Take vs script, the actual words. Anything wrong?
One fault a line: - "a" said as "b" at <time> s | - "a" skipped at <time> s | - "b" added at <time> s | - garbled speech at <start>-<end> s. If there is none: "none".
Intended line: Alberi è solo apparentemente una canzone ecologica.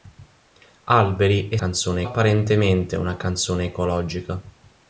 - "solo" said as "canzone" at 1.5 s